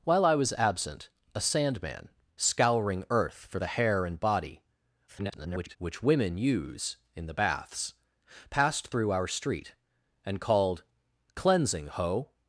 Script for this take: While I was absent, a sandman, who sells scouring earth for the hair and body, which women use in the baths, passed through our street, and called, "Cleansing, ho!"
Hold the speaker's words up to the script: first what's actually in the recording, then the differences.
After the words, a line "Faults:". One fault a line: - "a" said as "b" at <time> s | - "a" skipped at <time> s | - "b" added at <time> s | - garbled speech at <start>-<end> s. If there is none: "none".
While I was absent, a sandman, scouring earth for the hair and body, [garbled] which women use in the baths, passed through our street, and called, "Cleansing, ho!"
Faults:
- "who sells" skipped at 2.1 s
- garbled speech at 5.1-5.8 s